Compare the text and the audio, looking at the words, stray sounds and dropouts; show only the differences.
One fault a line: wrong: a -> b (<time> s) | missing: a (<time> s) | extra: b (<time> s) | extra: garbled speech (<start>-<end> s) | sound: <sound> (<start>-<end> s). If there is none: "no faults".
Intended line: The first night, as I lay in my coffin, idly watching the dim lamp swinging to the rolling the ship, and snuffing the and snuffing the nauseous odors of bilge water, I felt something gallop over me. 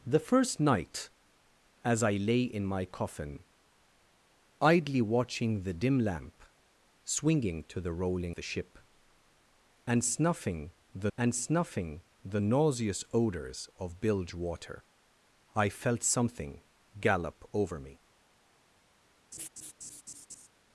sound: laugh (19.3-20.5 s)